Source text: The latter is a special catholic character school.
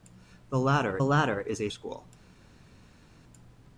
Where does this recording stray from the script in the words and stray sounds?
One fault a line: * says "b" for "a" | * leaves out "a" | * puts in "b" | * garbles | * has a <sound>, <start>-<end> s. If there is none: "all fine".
* puts in "latter"
* leaves out "special catholic character"